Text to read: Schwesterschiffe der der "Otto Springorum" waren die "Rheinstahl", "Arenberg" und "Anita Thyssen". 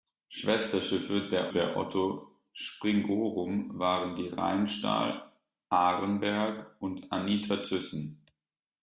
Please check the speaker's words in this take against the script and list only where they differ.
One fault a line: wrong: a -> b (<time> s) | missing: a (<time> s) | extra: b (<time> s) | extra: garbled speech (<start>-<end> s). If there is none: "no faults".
no faults